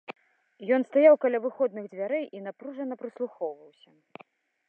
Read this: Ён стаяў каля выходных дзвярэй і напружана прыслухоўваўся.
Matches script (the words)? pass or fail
pass